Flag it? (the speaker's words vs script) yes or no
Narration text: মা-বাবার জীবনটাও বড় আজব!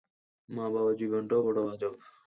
no